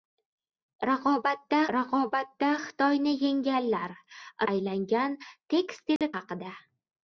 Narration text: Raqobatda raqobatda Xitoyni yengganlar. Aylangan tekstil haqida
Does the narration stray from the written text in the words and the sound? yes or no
yes